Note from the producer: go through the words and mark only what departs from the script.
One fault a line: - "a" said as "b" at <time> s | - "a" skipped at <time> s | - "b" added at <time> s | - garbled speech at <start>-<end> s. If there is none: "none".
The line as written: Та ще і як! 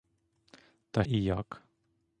- "ще" skipped at 1.0 s